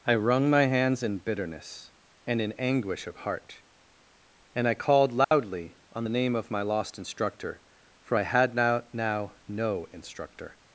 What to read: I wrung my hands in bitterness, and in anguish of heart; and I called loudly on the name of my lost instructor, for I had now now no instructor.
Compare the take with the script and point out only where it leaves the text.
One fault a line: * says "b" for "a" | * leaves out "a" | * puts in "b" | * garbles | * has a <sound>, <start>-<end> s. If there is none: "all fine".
* has a dropout, 5.2-5.3 s